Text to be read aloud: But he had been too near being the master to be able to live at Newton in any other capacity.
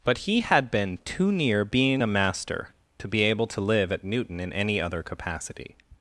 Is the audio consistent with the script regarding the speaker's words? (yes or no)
no